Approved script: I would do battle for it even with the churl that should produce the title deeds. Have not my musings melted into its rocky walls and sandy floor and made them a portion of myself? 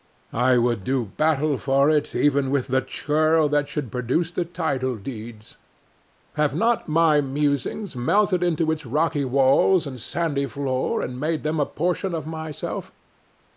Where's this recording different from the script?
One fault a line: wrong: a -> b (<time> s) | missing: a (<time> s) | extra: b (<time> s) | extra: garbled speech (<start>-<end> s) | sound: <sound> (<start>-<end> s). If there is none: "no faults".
no faults